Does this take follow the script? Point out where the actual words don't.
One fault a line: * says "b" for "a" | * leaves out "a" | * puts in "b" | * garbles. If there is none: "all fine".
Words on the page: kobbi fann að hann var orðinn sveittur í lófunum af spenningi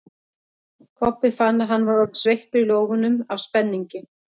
all fine